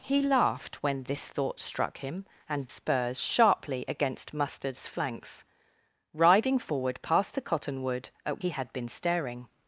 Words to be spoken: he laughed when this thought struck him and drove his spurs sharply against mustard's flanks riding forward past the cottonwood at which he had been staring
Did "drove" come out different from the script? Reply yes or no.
yes